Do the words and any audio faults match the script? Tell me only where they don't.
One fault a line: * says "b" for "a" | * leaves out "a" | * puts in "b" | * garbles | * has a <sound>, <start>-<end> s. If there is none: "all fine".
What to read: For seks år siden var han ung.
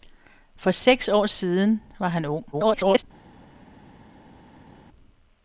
* garbles